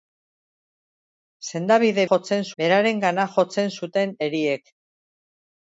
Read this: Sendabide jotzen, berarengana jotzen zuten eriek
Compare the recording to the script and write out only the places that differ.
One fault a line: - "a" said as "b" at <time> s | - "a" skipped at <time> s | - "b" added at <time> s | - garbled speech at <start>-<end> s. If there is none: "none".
none